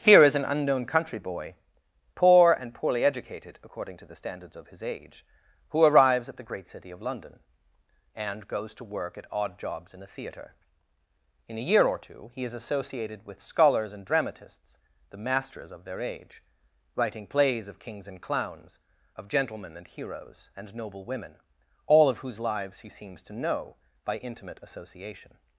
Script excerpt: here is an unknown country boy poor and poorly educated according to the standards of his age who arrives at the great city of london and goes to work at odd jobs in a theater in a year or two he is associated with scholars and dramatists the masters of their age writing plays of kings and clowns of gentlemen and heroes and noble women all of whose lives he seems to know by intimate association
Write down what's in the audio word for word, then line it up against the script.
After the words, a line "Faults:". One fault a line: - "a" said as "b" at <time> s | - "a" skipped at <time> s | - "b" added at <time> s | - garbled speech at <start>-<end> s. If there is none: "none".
here is an unknown country boy poor and poorly educated according to the standards of his age who arrives at the great city of london and goes to work at odd jobs in a theater in a year or two he is associated with scholars and dramatists the masters of their age writing plays of kings and clowns of gentlemen and heroes and noble women all of whose lives he seems to know by intimate association
Faults:
none